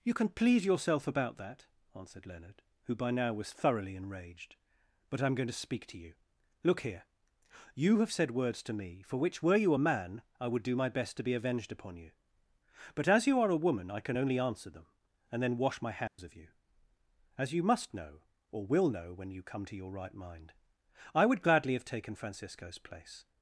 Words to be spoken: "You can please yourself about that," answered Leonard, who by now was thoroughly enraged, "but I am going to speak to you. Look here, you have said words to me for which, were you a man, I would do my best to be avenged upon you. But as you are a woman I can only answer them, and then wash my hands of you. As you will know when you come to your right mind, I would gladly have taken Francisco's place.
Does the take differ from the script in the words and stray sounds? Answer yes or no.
yes